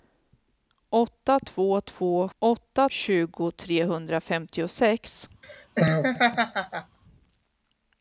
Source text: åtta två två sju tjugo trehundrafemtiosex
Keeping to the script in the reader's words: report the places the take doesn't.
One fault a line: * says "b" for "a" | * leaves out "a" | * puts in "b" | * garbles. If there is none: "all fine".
* says "åtta" for "sju"